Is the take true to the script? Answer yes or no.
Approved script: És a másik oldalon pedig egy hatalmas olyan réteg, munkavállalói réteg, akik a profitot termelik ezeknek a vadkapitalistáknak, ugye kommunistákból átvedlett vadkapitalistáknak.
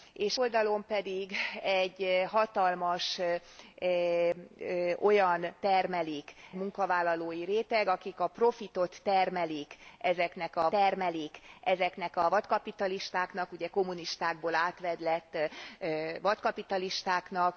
no